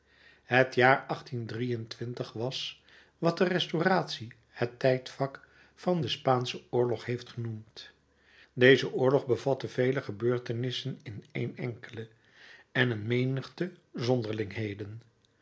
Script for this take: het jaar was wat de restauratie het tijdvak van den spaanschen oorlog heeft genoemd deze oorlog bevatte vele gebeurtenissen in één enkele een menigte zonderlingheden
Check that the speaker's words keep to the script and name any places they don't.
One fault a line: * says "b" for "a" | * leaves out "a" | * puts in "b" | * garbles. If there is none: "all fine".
* puts in "en"